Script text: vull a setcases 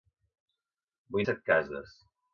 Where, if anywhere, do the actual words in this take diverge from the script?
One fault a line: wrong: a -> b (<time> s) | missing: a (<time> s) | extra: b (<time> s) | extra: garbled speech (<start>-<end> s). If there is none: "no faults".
no faults